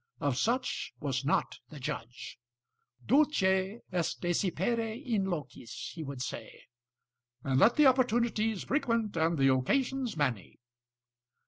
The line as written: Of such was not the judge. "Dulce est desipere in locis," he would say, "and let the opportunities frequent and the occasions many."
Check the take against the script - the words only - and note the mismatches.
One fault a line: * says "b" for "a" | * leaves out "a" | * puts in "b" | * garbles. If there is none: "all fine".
all fine